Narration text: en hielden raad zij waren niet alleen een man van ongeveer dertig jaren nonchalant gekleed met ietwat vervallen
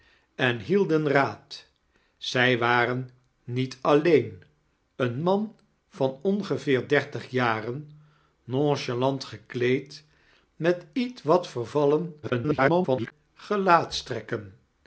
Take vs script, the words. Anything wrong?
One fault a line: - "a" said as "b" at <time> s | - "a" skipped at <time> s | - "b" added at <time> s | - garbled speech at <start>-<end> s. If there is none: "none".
- garbled speech at 12.2-13.1 s